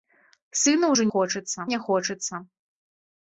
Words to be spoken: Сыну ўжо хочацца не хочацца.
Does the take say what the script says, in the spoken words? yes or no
yes